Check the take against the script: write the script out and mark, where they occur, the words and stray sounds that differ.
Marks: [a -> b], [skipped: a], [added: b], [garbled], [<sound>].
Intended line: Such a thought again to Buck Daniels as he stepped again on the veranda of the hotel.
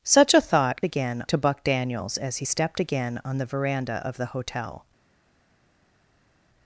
Such a thought again to Buck Daniels as he stepped again on the veranda of the hotel.